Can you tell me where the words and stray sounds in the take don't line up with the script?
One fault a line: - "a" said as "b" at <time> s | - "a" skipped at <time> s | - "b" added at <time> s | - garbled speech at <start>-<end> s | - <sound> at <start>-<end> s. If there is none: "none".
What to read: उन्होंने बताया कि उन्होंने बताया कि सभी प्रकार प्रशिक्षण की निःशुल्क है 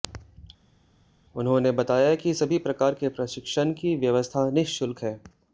- "उन्होंने बताया कि" skipped at 2.3 s
- "के" added at 2.9 s
- "व्यवस्था" added at 4.0 s